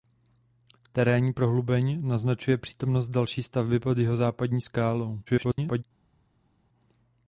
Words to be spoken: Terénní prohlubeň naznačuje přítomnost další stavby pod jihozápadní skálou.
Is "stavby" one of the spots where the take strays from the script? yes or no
no